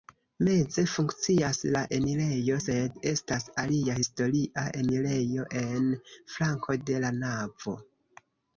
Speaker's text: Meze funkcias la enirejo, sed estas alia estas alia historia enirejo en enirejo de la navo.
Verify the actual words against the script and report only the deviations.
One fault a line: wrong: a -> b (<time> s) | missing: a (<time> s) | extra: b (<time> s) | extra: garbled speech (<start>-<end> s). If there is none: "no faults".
missing: estas alia (4.0 s)
wrong: enirejo -> flanko (6.4 s)